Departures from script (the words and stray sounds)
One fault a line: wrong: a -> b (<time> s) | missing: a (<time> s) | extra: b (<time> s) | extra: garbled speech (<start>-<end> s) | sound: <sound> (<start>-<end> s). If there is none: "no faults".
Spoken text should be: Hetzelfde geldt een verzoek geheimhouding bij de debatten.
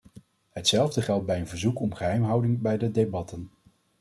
extra: bij (1.3 s)
extra: om (1.8 s)